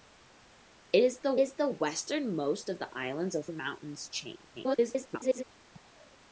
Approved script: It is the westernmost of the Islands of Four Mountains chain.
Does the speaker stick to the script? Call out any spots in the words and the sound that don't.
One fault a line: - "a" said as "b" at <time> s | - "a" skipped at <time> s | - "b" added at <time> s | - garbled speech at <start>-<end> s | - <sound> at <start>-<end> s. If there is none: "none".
- "is the" added at 1.4 s
- "Four" skipped at 3.5 s
- garbled speech at 4.5-5.4 s